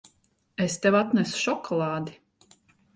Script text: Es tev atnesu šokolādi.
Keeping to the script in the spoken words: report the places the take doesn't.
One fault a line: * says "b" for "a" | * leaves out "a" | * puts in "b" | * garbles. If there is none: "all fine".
all fine